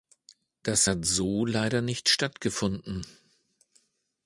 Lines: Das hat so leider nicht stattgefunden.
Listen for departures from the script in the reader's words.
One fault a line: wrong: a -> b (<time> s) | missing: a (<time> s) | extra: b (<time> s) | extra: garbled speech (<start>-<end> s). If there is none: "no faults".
no faults